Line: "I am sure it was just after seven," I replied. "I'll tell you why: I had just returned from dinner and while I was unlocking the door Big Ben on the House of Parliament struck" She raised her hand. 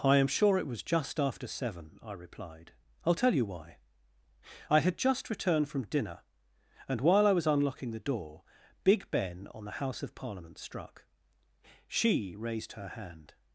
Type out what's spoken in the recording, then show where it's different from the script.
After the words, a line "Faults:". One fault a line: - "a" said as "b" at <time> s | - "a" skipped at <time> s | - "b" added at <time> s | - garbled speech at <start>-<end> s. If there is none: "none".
"I am sure it was just after seven," I replied. "I'll tell you why: I had just returned from dinner and while I was unlocking the door Big Ben on the House of Parliament struck" She raised her hand.
Faults:
none